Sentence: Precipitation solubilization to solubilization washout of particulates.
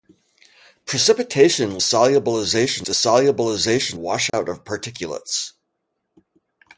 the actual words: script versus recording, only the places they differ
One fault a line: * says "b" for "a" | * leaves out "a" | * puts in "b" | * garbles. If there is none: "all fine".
all fine